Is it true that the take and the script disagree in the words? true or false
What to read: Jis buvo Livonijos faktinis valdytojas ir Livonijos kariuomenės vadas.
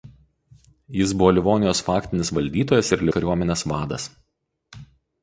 true